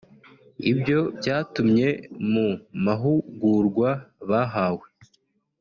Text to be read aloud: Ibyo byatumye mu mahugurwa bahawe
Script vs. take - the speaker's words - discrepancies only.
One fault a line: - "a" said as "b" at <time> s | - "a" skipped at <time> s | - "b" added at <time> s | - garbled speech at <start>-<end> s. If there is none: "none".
none